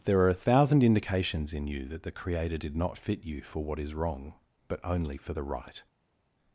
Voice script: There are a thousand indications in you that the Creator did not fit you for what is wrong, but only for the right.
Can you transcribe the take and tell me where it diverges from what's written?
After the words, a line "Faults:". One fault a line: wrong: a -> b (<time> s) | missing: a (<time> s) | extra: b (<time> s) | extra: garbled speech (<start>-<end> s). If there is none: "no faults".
There are a thousand indications in you that the Creator did not fit you for what is wrong, but only for the right.
Faults:
no faults